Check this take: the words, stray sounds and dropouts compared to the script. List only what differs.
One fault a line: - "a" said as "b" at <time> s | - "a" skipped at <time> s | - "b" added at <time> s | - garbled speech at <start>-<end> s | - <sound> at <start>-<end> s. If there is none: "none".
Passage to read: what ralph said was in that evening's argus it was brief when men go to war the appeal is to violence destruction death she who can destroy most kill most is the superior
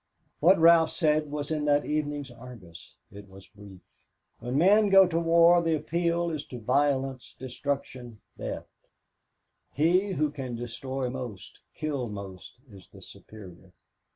- "she" said as "he" at 9.7 s